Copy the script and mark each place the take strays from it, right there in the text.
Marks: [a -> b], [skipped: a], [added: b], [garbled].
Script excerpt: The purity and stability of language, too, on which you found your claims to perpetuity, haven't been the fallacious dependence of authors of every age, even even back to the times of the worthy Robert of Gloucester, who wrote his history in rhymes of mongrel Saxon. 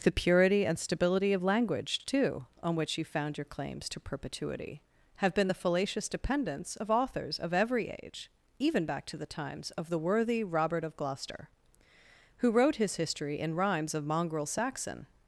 The purity and stability of language, too, on which you found your claims to perpetuity, [haven't -> have] been the fallacious dependence of authors of every age, even [skipped: even] back to the times of the worthy Robert of Gloucester, who wrote his history in rhymes of mongrel Saxon.